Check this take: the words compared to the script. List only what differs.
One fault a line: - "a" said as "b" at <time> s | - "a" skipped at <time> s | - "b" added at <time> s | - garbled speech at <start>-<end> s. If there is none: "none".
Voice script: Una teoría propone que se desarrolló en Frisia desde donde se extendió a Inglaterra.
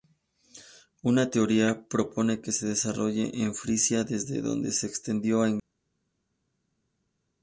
none